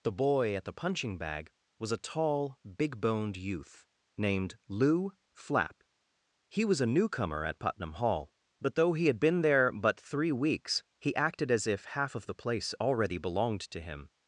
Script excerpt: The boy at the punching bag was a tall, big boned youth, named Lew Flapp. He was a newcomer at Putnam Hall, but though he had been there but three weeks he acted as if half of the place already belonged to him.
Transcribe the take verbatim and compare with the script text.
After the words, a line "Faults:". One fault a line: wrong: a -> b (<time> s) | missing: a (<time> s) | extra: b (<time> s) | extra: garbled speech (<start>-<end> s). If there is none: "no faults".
The boy at the punching bag was a tall, big boned youth, named Lew Flapp. He was a newcomer at Putnam Hall, but though he had been there but three weeks he acted as if half of the place already belonged to him.
Faults:
no faults